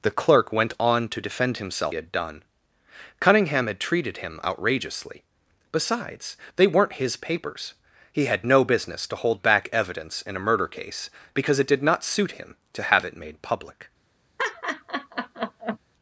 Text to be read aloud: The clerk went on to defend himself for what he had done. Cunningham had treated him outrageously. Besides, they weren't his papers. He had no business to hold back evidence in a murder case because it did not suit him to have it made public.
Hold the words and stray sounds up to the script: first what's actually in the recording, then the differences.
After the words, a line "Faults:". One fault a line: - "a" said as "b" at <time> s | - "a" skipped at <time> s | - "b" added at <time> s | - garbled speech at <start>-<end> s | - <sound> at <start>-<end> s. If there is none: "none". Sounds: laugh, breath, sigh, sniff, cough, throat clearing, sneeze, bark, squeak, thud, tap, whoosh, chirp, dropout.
The clerk went on to defend himself had done. Cunningham had treated him outrageously. Besides, they weren't his papers. He had no business to hold back evidence in a murder case because it did not suit him to have it made public.
Faults:
- "for what he" skipped at 1.9 s
- laugh at 14.4-15.8 s